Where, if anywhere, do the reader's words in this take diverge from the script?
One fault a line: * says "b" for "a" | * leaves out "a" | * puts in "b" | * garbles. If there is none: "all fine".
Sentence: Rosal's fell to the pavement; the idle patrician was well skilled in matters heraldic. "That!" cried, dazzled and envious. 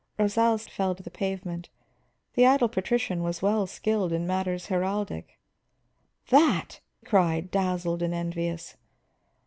all fine